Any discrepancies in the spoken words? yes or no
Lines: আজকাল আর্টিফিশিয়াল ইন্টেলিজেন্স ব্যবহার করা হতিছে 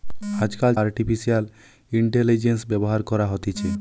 no